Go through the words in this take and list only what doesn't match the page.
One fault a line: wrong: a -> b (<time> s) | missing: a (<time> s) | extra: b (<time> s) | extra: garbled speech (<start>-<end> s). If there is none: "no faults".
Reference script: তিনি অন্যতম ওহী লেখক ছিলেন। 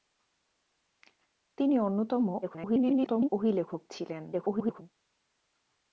extra: garbled speech (2.4-3.3 s)
extra: garbled speech (4.3-4.8 s)